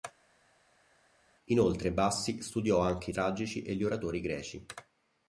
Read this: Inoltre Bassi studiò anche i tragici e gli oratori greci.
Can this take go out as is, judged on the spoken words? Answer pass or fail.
pass